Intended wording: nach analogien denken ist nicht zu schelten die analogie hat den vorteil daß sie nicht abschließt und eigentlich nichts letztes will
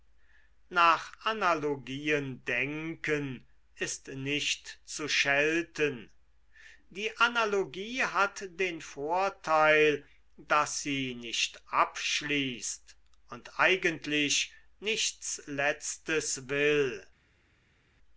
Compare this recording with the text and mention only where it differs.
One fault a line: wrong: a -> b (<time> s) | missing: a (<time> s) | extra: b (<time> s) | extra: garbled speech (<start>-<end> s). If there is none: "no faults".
no faults